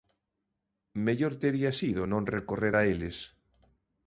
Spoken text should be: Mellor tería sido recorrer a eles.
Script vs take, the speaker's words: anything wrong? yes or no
yes